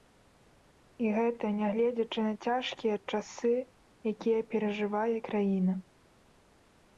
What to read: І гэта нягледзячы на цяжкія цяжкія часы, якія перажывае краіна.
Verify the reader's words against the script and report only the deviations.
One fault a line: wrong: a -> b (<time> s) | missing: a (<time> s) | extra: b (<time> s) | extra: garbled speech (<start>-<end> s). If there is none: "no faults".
missing: цяжкія (3.0 s)